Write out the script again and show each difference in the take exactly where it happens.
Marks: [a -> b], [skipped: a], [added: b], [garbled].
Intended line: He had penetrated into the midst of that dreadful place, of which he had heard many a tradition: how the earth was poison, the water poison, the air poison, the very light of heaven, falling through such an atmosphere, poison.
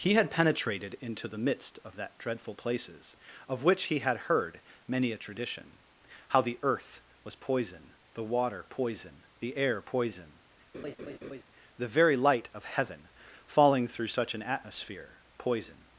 He had penetrated into the midst of that dreadful [place, -> places] of which he had heard many a tradition: how the earth was poison, the water poison, the air poison, the very light of heaven, falling through such an atmosphere, poison.